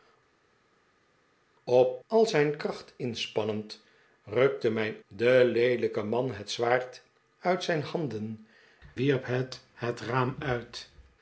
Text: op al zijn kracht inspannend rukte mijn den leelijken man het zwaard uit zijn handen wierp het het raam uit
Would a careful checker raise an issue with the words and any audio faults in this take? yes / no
no